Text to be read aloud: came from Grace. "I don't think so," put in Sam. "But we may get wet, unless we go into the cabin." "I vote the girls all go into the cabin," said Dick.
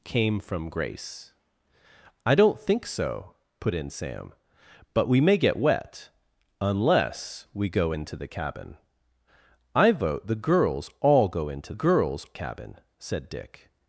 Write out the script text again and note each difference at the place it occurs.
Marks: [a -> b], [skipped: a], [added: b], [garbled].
came from Grace. "I don't think so," put in Sam. "But we may get wet, unless we go into the cabin." "I vote the girls all go into [the -> girls] cabin," said Dick.